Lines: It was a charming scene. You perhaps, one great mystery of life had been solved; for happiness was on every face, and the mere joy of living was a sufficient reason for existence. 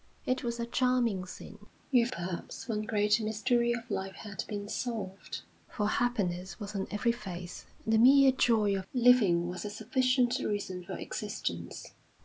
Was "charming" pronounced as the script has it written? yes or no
yes